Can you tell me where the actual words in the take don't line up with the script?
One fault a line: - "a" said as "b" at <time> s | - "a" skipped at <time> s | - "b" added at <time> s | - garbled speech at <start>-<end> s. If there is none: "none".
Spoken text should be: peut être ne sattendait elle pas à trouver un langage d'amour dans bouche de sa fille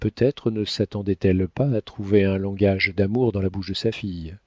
- "la" added at 3.4 s